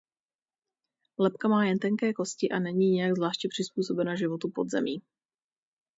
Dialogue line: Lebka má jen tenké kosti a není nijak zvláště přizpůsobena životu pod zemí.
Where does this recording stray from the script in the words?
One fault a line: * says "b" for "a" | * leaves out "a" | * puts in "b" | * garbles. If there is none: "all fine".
all fine